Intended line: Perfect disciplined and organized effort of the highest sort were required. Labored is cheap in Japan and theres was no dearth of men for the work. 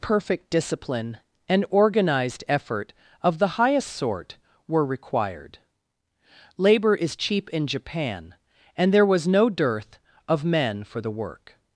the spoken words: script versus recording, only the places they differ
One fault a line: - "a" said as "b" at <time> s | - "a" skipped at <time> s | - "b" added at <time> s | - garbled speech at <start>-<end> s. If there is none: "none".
- "disciplined" said as "discipline" at 0.5 s
- "Labored" said as "Labor" at 6.6 s
- "theres" said as "there" at 8.9 s